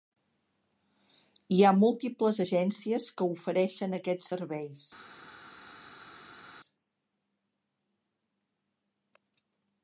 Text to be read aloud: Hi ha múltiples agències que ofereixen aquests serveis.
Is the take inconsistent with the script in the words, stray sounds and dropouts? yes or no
no